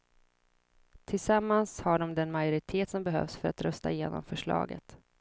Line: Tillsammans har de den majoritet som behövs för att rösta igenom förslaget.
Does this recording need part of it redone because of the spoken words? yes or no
no